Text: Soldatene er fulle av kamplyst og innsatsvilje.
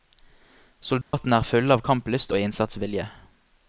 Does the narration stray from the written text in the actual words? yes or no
no